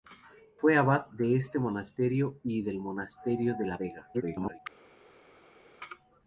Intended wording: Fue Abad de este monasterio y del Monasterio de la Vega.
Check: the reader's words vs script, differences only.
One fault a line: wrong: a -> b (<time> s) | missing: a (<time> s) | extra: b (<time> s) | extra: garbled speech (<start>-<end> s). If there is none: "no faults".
extra: garbled speech (4.1-4.6 s)